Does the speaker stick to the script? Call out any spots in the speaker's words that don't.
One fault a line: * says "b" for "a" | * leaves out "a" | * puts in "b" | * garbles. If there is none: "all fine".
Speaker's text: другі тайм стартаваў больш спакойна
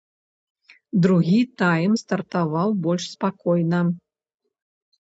all fine